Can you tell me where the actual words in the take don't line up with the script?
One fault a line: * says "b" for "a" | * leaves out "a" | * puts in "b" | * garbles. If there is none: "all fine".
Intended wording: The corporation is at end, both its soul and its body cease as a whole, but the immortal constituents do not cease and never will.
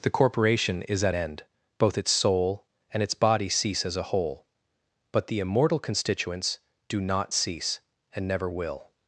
all fine